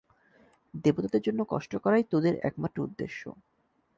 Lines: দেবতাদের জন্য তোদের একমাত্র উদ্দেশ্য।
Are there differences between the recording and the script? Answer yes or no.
yes